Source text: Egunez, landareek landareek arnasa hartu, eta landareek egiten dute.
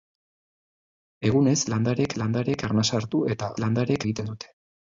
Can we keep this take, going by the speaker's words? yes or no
yes